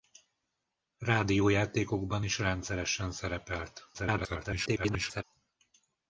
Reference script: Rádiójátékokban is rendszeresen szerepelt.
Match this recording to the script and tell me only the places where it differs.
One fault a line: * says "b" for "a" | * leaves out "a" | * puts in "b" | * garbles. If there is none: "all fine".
* garbles